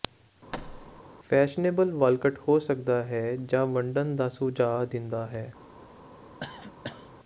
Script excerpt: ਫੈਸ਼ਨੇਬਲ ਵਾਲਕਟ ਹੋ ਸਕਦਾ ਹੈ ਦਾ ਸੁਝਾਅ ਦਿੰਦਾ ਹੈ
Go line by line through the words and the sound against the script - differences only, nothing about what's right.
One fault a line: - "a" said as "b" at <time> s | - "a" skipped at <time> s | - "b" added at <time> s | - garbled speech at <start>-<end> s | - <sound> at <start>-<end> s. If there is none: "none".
- thud at 0.5-1.0 s
- "ਜਾਂ ਵੰਡਣ" added at 3.4 s
- cough at 6.4-7.1 s